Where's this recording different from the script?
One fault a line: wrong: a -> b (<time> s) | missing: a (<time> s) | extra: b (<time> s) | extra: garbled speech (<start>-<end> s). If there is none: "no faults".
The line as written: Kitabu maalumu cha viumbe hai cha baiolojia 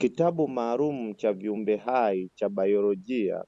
no faults